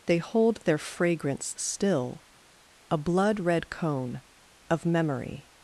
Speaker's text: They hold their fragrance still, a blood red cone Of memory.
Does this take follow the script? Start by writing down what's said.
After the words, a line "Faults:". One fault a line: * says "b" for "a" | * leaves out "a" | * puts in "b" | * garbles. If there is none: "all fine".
They hold their fragrance still, a blood red cone Of memory.
Faults:
all fine